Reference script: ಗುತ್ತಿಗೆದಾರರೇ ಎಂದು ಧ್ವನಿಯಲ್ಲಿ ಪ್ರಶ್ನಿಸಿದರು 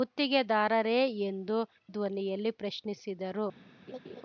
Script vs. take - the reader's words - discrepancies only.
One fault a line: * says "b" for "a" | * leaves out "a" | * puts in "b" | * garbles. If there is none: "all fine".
all fine